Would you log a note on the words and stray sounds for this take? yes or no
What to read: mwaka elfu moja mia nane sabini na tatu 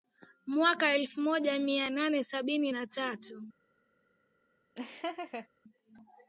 yes